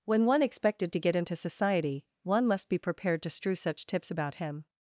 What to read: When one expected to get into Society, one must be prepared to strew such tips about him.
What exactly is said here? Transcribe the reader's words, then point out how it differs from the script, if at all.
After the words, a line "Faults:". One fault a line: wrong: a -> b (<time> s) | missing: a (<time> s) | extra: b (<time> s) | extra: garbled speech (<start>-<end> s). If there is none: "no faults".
When one expected to get into Society, one must be prepared to strew such tips about him.
Faults:
no faults